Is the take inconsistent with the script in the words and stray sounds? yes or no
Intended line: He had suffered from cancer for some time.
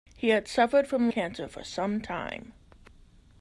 no